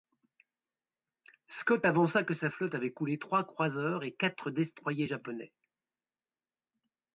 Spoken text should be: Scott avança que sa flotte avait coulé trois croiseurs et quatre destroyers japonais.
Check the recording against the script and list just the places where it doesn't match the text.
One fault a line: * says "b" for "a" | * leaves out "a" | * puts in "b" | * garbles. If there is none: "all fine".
all fine